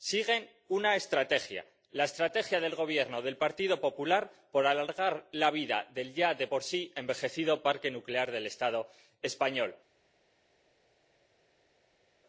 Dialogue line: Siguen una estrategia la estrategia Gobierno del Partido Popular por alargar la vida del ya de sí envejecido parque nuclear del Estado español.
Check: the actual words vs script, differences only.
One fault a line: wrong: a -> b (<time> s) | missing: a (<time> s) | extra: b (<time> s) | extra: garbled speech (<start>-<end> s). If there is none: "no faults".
extra: del (2.6 s)
extra: por (6.4 s)